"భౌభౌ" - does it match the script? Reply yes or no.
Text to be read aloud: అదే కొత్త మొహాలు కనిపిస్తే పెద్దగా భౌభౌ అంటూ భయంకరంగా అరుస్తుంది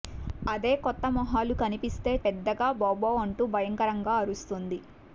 yes